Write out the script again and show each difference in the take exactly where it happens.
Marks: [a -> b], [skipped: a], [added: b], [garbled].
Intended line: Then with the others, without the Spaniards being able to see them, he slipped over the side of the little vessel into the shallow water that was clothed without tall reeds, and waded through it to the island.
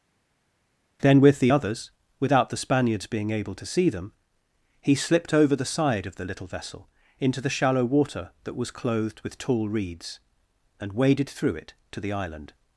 Then with the others, without the Spaniards being able to see them, he slipped over the side of the little vessel into the shallow water that was clothed [without -> with] tall reeds, and waded through it to the island.